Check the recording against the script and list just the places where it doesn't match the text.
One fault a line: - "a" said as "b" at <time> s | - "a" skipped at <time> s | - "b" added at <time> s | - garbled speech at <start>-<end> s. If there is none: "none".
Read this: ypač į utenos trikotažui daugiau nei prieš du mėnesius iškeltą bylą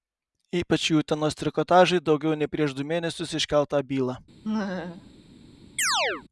none